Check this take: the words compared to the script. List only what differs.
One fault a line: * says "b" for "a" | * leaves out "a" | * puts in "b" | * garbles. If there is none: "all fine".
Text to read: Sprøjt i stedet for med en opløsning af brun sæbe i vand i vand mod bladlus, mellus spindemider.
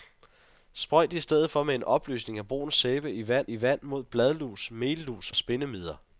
all fine